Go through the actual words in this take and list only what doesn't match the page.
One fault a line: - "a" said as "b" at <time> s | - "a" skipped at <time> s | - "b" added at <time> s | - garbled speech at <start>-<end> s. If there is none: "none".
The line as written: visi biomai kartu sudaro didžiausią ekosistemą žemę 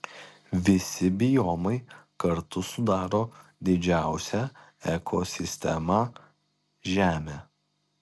none